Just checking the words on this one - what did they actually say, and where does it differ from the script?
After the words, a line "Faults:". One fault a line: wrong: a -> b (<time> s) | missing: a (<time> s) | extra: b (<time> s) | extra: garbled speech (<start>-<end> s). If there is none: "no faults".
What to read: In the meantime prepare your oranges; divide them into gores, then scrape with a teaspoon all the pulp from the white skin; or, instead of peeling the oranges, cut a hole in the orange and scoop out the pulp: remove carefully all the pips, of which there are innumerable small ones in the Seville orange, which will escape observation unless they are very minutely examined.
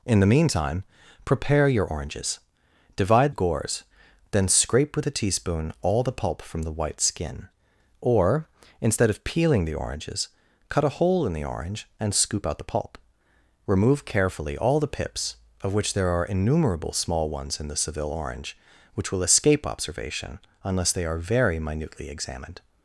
In the meantime prepare your oranges; divide gores, then scrape with a teaspoon all the pulp from the white skin; or, instead of peeling the oranges, cut a hole in the orange and scoop out the pulp: remove carefully all the pips, of which there are innumerable small ones in the Seville orange, which will escape observation unless they are very minutely examined.
Faults:
missing: them into (3.3 s)